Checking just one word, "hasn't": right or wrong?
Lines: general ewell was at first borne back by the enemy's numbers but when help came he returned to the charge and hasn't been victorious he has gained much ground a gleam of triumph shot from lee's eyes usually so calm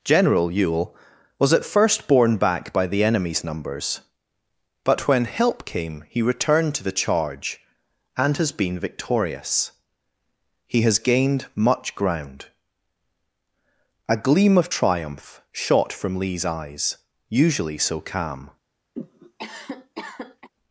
wrong